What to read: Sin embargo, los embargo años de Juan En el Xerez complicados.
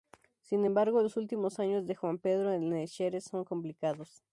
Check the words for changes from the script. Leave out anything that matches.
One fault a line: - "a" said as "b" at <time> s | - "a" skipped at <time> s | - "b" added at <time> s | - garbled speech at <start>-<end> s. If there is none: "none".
- "embargo" said as "últimos" at 1.2 s
- "Pedro" added at 2.2 s
- "son" added at 3.2 s